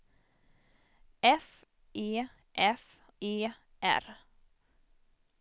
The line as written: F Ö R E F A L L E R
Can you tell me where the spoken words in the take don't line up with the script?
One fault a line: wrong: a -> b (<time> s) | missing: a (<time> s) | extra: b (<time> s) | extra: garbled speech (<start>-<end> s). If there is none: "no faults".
missing: Ö R (1.5 s)
missing: A L L (2.8 s)